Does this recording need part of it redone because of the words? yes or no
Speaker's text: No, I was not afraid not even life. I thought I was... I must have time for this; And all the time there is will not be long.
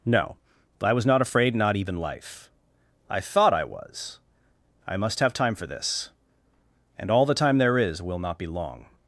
no